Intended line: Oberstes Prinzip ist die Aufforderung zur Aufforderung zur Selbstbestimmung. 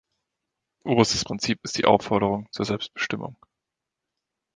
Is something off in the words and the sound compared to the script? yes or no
yes